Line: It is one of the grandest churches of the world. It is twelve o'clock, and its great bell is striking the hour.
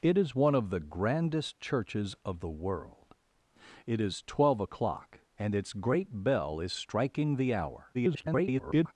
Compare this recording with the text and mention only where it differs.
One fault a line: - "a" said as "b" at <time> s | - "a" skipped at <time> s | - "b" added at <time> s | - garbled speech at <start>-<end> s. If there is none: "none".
- garbled speech at 7.9-8.9 s